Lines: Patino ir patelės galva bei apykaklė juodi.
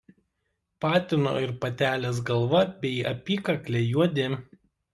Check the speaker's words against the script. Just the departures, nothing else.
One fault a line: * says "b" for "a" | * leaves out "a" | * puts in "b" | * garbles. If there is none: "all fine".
all fine